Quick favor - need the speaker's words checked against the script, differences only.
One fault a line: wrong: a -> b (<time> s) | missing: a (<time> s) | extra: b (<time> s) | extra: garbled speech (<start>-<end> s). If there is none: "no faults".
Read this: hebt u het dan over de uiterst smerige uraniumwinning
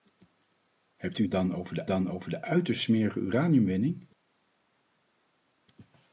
extra: dan over de (1.9 s)